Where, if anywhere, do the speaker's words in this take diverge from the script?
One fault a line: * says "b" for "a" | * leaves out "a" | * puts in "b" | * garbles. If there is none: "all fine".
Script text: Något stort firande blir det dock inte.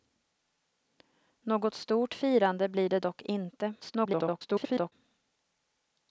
* garbles